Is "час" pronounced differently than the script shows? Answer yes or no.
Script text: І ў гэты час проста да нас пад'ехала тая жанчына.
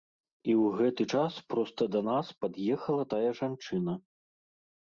no